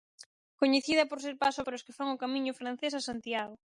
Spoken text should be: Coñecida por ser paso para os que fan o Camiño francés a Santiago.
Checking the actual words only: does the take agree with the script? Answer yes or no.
yes